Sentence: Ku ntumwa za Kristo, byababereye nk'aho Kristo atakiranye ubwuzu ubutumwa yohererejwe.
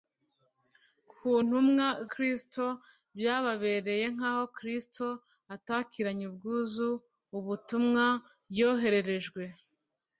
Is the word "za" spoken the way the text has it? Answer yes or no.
no